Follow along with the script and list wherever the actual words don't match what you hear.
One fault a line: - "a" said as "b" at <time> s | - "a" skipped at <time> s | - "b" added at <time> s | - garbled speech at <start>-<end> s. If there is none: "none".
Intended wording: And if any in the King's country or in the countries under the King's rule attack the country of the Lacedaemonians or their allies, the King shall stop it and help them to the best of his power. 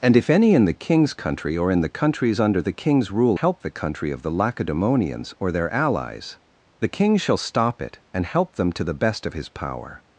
- "attack" said as "help" at 3.3 s